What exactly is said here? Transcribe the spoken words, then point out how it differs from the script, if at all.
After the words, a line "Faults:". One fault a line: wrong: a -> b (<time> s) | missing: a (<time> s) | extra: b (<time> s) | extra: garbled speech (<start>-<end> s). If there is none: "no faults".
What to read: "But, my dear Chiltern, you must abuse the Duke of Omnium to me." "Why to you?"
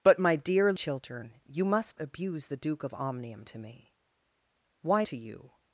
"But, my dear Chiltern, you must abuse the Duke of Omnium to me." "Why to you?"
Faults:
no faults